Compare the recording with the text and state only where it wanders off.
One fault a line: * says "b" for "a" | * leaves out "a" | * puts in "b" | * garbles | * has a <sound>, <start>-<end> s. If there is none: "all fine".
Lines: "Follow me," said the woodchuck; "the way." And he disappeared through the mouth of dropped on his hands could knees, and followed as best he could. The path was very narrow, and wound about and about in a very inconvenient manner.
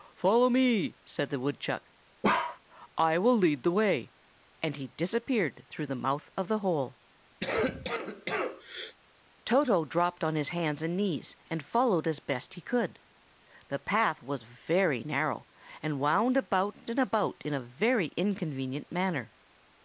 * has a bark, 2.2-2.6 s
* puts in "I will lead"
* puts in "the hole Toto"
* has a cough, 7.4-9.0 s
* says "and" for "could"